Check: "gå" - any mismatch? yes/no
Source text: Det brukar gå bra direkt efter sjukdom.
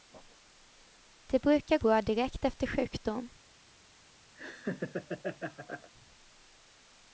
yes